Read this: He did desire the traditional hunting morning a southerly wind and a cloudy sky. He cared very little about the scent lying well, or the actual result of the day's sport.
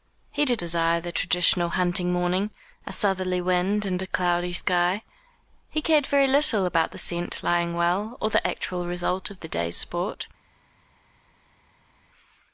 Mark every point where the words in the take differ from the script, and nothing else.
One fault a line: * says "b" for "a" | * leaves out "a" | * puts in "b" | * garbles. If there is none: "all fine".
all fine